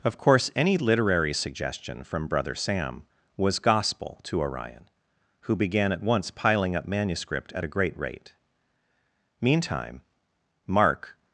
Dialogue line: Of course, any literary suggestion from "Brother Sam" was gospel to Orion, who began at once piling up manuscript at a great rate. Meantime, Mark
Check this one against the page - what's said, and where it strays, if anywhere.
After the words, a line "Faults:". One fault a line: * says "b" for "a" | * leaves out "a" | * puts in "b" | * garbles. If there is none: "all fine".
Of course, any literary suggestion from "Brother Sam" was gospel to Orion, who began at once piling up manuscript at a great rate. Meantime, Mark
Faults:
all fine